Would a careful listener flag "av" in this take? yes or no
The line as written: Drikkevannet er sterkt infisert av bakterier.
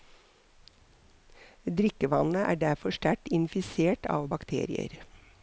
no